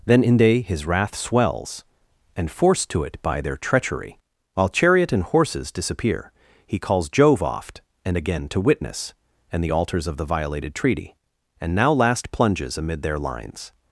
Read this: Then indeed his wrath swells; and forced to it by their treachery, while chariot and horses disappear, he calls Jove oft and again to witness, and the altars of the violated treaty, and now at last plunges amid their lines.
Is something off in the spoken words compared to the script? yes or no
yes